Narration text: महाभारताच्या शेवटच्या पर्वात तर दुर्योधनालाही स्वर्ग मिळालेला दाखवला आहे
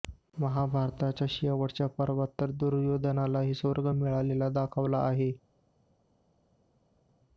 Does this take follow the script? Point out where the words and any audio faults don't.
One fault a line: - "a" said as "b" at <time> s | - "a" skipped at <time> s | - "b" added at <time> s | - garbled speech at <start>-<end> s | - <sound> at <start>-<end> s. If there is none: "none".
none